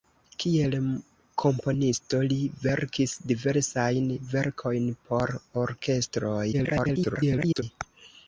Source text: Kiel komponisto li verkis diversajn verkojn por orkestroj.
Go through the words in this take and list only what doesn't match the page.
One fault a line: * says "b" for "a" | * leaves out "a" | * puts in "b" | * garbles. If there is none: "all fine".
* garbles